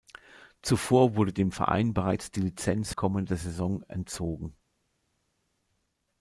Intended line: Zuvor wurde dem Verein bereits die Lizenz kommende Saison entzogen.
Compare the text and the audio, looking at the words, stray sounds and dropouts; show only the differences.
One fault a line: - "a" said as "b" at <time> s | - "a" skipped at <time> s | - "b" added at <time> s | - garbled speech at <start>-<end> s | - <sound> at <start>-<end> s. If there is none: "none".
none